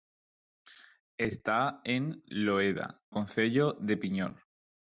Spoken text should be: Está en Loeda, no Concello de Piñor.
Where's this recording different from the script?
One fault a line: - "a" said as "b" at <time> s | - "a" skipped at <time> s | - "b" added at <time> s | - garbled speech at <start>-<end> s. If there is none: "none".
- "no" skipped at 3.0 s